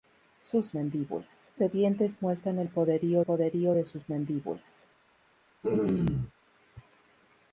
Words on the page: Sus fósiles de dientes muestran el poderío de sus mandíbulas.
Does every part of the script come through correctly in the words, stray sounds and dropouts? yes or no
no